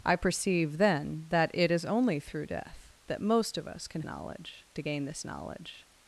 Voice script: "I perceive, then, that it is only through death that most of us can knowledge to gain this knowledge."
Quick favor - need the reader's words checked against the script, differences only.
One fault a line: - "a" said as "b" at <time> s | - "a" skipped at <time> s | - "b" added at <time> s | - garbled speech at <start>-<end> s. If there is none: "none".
none